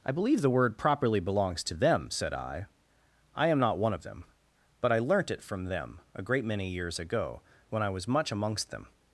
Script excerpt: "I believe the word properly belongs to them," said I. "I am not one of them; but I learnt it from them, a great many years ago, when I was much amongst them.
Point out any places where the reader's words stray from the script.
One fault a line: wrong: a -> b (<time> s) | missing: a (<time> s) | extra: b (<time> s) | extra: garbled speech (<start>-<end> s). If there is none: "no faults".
no faults